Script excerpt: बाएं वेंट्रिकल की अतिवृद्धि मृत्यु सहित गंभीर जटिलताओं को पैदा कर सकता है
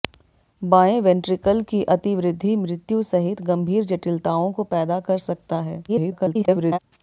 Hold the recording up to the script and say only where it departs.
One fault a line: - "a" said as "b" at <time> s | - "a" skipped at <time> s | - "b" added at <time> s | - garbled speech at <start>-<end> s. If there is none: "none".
- garbled speech at 5.9-6.8 s